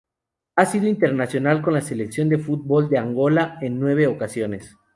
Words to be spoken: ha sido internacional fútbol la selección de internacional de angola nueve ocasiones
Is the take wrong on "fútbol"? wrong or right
wrong